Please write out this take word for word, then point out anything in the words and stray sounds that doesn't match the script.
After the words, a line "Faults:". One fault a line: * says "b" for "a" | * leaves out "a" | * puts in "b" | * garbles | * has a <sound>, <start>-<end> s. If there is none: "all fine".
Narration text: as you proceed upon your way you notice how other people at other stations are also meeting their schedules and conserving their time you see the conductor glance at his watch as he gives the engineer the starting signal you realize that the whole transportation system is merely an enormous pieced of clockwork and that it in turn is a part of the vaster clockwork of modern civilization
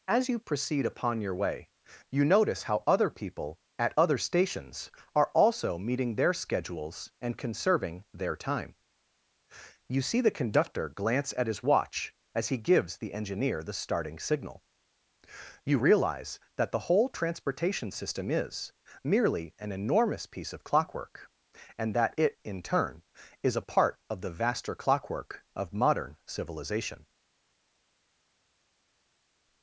as you proceed upon your way you notice how other people at other stations are also meeting their schedules and conserving their time you see the conductor glance at his watch as he gives the engineer the starting signal you realize that the whole transportation system is merely an enormous piece of clockwork and that it in turn is a part of the vaster clockwork of modern civilization
Faults:
* says "piece" for "pieced"